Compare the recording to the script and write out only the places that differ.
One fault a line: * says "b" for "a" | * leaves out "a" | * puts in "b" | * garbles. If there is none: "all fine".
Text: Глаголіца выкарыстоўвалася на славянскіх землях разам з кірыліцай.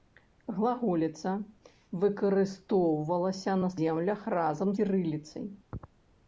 * leaves out "славянскіх"
* leaves out "з"